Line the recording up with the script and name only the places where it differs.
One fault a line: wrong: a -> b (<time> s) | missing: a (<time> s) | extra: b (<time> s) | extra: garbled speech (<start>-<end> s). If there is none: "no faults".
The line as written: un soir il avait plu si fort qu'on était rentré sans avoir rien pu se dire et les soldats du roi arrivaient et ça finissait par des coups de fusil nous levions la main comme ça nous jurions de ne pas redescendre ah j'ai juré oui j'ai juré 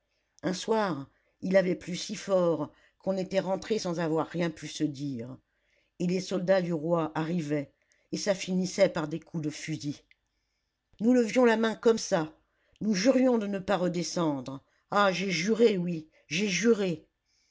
no faults